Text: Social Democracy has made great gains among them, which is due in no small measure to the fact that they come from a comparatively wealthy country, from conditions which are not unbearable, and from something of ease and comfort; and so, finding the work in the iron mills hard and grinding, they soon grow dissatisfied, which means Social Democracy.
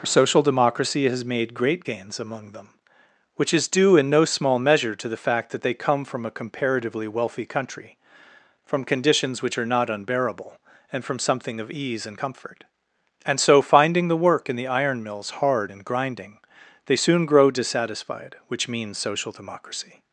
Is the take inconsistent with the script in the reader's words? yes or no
no